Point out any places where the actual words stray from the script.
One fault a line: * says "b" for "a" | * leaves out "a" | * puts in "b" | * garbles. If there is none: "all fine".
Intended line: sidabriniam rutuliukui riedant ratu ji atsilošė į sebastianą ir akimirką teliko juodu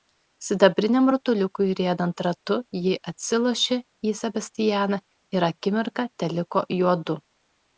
all fine